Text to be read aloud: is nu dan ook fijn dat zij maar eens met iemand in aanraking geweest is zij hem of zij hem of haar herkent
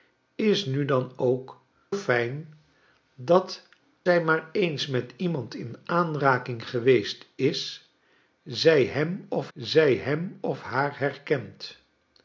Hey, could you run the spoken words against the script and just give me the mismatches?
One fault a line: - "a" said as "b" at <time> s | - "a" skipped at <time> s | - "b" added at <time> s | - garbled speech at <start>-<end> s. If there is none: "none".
none